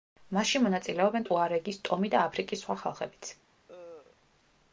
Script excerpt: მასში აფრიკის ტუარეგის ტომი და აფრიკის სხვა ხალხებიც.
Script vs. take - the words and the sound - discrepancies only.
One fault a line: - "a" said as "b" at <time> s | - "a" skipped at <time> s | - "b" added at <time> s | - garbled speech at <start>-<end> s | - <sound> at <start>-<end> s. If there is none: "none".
- "აფრიკის" said as "მონაწილეობენ" at 0.6 s
- cough at 3.7-4.2 s